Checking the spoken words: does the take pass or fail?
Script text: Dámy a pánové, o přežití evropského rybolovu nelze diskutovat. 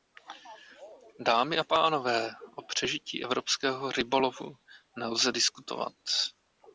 pass